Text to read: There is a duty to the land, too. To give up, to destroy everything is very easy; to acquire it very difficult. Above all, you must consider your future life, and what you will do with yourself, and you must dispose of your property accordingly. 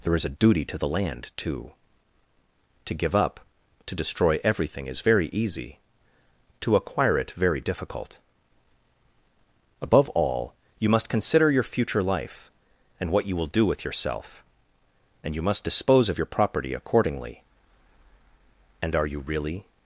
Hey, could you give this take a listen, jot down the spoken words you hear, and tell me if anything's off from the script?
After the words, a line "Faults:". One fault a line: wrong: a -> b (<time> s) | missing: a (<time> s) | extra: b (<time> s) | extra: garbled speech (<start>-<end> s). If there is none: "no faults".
There is a duty to the land, too. To give up, to destroy everything is very easy; to acquire it very difficult. Above all, you must consider your future life, and what you will do with yourself, and you must dispose of your property accordingly. And are you really
Faults:
extra: And are you really (18.8 s)